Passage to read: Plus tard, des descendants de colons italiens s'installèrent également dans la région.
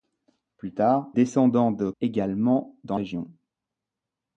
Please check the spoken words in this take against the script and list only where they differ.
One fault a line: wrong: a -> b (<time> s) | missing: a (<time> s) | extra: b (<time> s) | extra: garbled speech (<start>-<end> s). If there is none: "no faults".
missing: des (1.1 s)
missing: colons italiens s'installèrent (1.9 s)
missing: la (3.0 s)